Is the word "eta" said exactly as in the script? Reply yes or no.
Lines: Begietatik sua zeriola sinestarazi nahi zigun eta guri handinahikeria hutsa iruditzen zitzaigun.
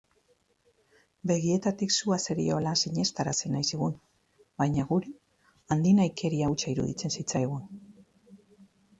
no